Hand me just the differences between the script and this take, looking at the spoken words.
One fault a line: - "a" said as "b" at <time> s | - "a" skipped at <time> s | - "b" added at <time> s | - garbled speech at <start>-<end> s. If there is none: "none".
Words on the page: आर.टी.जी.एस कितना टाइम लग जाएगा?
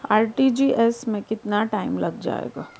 - "में" added at 1.1 s